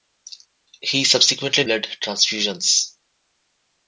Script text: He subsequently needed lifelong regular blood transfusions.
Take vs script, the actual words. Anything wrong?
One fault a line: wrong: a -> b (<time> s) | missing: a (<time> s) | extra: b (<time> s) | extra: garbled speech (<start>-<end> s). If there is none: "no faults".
missing: needed lifelong regular (1.6 s)